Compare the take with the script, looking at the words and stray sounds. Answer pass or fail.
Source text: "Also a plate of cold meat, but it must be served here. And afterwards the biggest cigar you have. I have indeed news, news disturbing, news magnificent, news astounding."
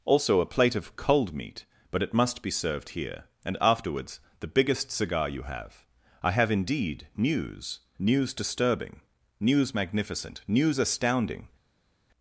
pass